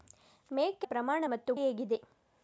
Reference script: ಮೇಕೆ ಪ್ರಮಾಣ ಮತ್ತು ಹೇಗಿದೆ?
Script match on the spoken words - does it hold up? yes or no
yes